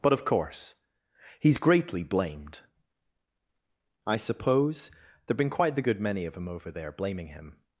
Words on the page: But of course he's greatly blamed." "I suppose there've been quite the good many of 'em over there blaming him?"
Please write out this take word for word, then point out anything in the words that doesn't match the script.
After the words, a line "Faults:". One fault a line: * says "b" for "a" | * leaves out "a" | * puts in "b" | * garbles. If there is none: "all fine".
But of course he's greatly blamed." "I suppose there've been quite the good many of 'em over there blaming him?"
Faults:
all fine